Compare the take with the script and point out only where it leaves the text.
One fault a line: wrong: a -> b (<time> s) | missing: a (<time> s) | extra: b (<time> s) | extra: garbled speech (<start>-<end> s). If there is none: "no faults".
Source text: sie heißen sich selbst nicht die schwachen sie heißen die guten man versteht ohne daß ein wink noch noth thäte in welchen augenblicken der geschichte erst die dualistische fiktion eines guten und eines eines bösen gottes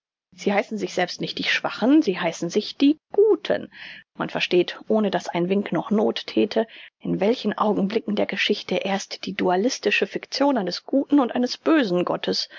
extra: sich (2.5 s)
missing: eines (11.6 s)